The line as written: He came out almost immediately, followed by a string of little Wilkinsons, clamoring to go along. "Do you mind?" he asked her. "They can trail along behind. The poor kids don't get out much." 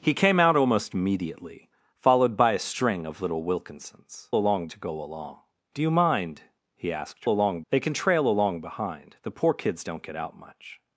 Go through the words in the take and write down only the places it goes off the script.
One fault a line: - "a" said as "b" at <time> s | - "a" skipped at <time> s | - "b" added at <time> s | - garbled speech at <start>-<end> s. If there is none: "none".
- "clamoring" said as "along" at 4.4 s
- "her" said as "along" at 7.3 s